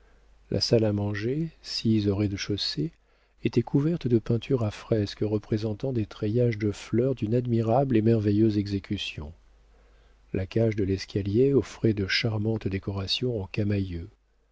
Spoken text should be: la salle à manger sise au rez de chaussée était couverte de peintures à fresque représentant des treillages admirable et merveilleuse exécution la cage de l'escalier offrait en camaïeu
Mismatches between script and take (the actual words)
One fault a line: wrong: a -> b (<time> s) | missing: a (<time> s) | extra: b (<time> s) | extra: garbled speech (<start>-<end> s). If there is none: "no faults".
extra: de fleurs d'une (6.6 s)
extra: de charmantes décorations (11.9 s)